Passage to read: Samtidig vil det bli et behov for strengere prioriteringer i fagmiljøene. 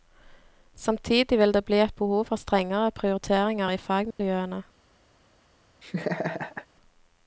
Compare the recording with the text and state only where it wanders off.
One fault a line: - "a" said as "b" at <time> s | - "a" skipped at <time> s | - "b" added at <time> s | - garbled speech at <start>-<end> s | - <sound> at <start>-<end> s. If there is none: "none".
- dropout at 4.1-4.2 s
- laugh at 5.8-6.7 s